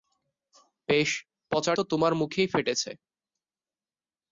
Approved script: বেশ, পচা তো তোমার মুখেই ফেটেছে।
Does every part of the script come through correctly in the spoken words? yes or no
yes